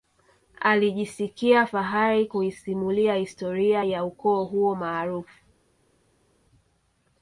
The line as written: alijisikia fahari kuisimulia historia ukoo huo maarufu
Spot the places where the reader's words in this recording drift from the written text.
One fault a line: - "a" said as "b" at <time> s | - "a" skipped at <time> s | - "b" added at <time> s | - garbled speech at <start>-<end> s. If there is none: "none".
- "ya" added at 3.8 s